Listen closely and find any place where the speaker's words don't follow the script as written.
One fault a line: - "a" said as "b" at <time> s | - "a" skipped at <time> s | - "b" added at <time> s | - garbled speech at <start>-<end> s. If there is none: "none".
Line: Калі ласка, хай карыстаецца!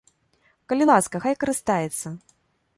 none